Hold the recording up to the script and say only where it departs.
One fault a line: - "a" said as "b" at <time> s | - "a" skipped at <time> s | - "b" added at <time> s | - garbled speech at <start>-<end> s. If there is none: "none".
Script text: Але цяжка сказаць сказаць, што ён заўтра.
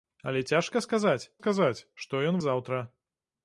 none